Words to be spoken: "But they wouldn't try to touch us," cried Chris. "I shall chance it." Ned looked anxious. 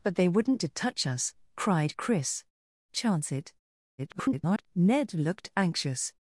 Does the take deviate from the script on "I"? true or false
true